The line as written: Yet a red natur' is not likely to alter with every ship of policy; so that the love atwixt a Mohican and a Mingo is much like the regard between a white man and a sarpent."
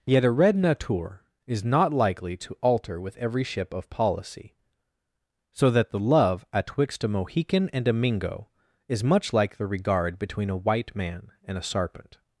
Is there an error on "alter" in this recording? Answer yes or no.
no